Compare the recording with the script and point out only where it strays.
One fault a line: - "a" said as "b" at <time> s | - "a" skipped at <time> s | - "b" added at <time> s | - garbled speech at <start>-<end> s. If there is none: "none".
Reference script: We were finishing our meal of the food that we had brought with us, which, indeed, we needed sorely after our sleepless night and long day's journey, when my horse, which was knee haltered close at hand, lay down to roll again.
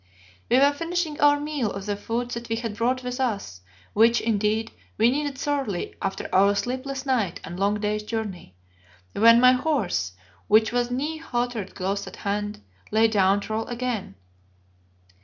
none